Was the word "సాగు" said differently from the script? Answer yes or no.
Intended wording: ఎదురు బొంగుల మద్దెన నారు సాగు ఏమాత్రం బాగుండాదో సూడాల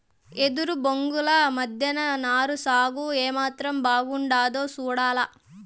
no